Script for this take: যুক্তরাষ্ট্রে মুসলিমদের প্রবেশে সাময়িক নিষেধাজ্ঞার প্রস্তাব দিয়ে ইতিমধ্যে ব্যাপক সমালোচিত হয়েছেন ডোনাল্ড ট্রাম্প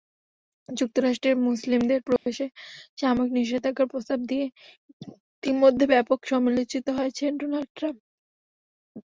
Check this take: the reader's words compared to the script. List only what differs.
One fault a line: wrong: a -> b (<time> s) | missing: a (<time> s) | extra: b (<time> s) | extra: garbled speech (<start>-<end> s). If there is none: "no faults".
no faults